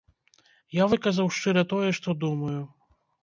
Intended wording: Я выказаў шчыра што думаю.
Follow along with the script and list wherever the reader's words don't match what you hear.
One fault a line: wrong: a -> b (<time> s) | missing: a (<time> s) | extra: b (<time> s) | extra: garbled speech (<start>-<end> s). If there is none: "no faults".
extra: тое (1.8 s)